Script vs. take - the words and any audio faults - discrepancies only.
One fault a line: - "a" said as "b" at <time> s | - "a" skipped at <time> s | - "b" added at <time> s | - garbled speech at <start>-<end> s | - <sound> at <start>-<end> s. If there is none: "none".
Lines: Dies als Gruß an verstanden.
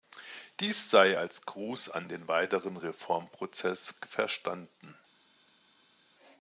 - "sei" added at 0.9 s
- "den weiteren Reformprozess" added at 2.1 s